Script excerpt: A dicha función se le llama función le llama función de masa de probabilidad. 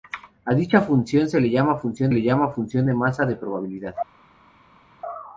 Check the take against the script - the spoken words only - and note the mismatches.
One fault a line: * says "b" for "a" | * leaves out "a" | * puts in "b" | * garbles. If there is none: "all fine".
all fine